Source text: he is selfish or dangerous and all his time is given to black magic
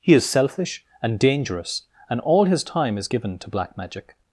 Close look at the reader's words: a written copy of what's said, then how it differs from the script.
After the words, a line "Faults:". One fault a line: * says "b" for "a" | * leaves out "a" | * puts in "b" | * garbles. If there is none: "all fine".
he is selfish and dangerous and all his time is given to black magic
Faults:
* says "and" for "or"